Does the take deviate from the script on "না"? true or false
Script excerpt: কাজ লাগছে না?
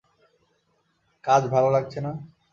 false